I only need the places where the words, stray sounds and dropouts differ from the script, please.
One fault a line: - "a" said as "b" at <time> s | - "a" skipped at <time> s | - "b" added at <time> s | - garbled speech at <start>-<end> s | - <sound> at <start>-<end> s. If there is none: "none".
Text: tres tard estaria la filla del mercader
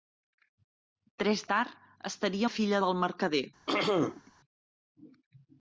- throat clearing at 3.7-4.3 s